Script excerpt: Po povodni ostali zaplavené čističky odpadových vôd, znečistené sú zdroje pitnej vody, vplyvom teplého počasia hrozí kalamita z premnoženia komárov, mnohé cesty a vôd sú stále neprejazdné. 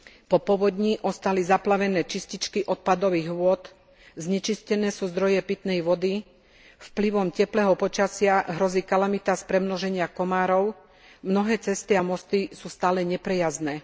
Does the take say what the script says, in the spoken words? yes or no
no